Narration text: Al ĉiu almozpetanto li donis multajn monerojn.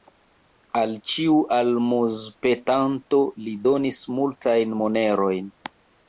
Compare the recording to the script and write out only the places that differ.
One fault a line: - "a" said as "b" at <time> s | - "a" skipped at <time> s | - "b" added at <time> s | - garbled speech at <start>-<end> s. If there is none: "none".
none